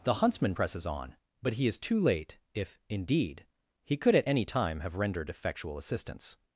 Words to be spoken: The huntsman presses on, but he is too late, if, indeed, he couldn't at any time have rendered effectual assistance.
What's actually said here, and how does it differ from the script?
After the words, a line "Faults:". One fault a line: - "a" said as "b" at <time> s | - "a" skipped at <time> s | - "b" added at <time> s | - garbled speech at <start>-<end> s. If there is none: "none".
The huntsman presses on, but he is too late, if, indeed, he could at any time have rendered effectual assistance.
Faults:
- "couldn't" said as "could" at 4.0 s